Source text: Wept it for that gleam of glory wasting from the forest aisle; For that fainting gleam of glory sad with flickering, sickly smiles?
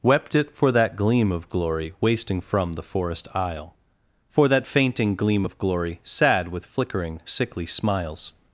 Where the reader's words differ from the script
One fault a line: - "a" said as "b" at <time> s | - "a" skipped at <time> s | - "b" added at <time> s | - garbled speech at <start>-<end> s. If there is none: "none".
none